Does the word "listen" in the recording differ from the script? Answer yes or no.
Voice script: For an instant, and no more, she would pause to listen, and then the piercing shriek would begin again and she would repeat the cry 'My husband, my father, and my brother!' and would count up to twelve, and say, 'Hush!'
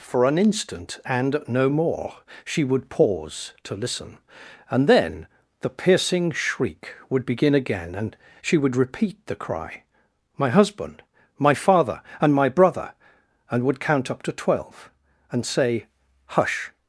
no